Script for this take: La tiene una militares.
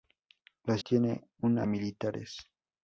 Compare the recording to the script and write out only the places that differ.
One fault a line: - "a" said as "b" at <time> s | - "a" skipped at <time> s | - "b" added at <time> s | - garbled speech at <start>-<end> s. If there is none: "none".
none